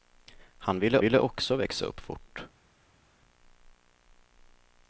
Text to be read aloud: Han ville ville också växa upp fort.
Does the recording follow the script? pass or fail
pass